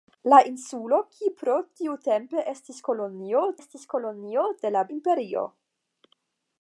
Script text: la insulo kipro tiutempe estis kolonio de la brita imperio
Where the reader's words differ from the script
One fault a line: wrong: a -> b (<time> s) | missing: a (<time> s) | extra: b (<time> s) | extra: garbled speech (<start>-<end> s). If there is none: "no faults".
extra: estis kolonio (3.6 s)
missing: brita (4.8 s)